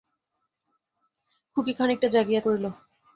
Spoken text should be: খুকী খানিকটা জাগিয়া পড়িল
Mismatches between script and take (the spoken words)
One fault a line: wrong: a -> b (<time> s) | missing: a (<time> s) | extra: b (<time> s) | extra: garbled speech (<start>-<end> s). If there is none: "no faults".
no faults